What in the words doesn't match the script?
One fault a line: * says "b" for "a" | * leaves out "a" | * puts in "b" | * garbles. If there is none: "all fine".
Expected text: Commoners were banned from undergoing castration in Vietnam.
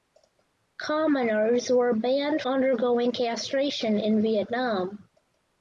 * leaves out "from"